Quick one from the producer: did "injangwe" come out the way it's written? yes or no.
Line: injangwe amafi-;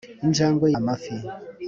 yes